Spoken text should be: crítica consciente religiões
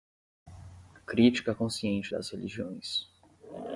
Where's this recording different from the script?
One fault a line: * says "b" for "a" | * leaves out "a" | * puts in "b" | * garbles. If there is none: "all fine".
* puts in "das"